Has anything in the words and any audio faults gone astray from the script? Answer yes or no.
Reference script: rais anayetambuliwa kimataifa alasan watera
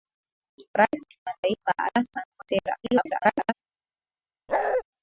yes